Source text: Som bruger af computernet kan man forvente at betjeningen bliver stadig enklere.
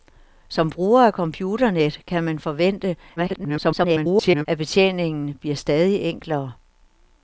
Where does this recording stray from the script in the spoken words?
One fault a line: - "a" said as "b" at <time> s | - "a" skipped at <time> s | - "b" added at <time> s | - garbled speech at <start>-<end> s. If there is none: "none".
- garbled speech at 3.2-4.5 s